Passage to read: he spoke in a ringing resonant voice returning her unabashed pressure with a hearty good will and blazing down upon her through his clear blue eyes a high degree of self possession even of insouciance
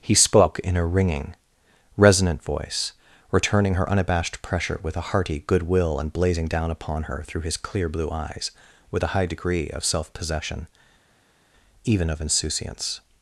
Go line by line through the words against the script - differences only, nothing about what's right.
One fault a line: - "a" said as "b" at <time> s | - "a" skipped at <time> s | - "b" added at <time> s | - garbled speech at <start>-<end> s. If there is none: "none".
- "with" added at 8.9 s